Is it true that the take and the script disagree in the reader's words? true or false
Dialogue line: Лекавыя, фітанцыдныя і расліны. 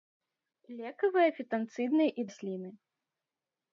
false